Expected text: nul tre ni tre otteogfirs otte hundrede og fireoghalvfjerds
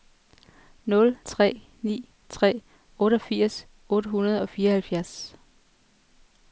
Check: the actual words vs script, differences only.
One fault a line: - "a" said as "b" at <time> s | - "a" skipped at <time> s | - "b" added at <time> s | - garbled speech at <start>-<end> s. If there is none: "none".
none